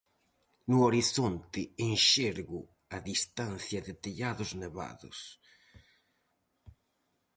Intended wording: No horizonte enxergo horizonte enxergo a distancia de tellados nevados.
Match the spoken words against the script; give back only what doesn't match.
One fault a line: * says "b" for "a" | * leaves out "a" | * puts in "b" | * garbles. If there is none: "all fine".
* leaves out "horizonte enxergo"